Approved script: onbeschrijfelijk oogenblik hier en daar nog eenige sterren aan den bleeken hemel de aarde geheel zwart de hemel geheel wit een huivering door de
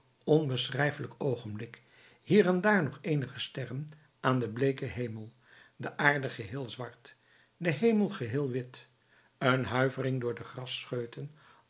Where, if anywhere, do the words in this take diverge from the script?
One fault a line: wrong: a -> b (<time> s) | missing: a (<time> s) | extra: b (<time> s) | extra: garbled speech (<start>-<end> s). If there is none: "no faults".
no faults